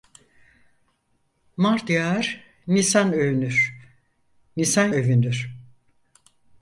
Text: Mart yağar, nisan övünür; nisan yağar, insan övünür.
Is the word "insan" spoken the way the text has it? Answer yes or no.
no